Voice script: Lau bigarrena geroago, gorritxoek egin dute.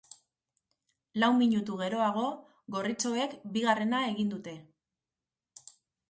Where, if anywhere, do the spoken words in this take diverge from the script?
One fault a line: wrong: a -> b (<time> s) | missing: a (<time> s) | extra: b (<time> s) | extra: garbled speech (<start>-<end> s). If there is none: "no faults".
wrong: bigarrena -> minutu (1.4 s)
extra: bigarrena (3.6 s)